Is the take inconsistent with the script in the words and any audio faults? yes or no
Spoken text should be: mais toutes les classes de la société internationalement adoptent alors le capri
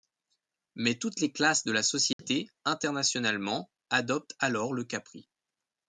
yes